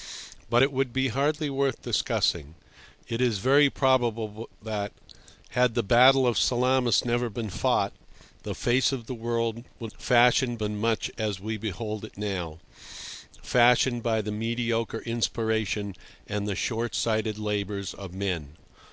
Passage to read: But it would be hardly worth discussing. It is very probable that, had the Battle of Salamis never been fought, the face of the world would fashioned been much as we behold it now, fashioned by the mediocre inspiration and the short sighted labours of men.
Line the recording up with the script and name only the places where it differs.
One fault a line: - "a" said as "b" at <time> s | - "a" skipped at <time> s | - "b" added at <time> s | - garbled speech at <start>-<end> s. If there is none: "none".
none